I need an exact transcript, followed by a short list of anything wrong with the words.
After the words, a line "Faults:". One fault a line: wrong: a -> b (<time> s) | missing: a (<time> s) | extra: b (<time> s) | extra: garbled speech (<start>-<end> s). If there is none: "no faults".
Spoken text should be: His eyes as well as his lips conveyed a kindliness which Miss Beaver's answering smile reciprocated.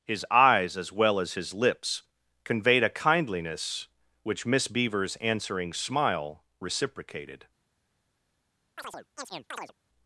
His eyes as well as his lips conveyed a kindliness which Miss Beaver's answering smile reciprocated.
Faults:
no faults